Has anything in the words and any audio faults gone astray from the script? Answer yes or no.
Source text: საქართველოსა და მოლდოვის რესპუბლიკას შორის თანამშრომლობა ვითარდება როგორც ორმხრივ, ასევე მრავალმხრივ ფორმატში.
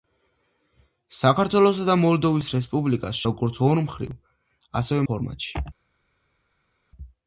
yes